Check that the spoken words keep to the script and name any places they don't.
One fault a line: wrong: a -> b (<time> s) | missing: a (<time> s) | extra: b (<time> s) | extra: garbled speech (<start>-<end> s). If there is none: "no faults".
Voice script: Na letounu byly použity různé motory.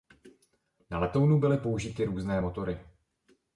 no faults